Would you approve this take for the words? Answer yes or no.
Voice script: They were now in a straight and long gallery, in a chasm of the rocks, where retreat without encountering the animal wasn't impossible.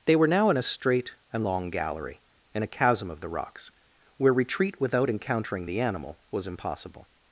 no